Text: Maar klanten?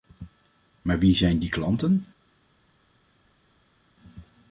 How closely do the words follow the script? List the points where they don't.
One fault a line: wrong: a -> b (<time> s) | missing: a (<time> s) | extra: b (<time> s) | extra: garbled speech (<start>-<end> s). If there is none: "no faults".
extra: wie zijn die (1.0 s)